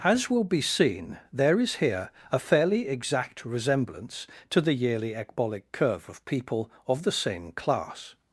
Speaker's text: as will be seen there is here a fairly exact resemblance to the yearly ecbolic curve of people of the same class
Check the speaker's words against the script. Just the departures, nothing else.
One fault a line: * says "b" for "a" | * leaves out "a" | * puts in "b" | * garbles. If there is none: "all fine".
all fine